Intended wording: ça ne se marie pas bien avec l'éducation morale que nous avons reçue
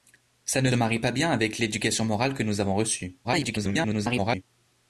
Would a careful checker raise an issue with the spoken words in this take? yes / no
yes